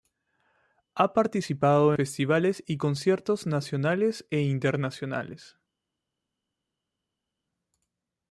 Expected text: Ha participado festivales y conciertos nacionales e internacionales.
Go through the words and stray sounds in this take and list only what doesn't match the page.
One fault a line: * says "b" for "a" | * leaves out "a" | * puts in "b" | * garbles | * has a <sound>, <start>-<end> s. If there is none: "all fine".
all fine